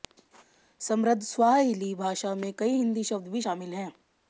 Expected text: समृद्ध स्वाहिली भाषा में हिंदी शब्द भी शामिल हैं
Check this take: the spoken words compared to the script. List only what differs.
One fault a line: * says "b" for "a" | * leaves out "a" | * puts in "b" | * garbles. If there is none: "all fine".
* puts in "कई"